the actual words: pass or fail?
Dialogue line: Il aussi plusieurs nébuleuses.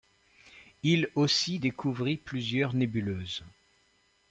fail